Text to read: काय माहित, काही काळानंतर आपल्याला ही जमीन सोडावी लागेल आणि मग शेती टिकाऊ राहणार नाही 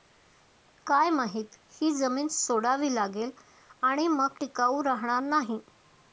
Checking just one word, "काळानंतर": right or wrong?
wrong